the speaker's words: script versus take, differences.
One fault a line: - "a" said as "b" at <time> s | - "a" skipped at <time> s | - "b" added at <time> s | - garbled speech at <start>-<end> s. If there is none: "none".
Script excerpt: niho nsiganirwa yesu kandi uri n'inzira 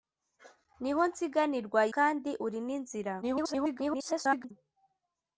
- "yesu" skipped at 1.8 s
- garbled speech at 3.2-4.5 s